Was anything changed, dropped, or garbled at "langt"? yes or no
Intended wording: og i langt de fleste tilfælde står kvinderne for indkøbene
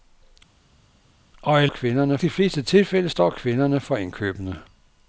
yes